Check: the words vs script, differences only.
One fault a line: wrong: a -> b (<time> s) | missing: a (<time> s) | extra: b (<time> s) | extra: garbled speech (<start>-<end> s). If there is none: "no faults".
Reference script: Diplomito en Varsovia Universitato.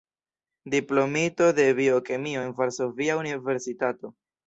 extra: de biokemio (1.5 s)